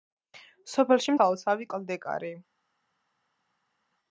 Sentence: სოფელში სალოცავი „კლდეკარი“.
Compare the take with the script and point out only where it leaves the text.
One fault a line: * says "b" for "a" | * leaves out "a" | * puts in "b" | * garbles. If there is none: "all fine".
all fine